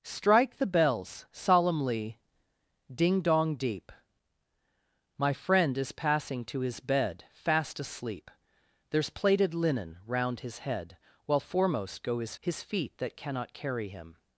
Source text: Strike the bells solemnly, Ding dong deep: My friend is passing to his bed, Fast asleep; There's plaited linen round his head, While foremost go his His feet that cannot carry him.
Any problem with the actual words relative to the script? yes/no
no